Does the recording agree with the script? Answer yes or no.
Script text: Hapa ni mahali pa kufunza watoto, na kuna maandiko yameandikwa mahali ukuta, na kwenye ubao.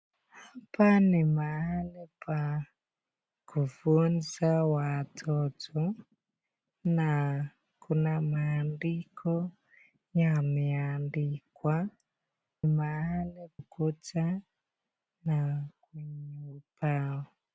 yes